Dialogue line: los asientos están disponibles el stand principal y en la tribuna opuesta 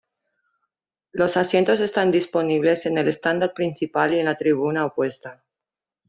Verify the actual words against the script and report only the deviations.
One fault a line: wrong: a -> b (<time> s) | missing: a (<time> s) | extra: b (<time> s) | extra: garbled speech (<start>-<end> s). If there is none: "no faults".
extra: en (2.9 s)